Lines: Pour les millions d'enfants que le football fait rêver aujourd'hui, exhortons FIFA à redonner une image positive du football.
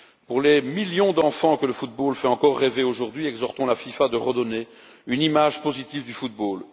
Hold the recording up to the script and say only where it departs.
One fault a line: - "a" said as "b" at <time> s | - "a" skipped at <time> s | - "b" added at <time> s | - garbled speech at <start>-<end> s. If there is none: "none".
- "encore" added at 2.3 s
- "la" added at 3.6 s